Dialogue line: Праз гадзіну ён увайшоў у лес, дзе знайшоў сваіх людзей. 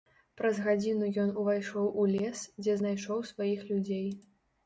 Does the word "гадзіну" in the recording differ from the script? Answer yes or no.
no